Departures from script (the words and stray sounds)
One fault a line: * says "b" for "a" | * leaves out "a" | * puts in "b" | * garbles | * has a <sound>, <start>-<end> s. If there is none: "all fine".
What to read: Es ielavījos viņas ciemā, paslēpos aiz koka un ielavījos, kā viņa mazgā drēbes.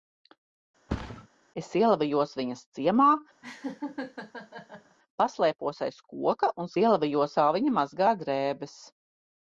* has a thud, 0.9-1.3 s
* has a laugh, 3.4-5.0 s